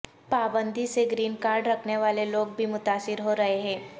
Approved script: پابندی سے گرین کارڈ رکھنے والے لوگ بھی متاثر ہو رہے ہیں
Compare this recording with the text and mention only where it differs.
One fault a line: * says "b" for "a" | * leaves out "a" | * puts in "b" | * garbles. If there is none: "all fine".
all fine